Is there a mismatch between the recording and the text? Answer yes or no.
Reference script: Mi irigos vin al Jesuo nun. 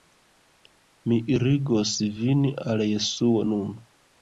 no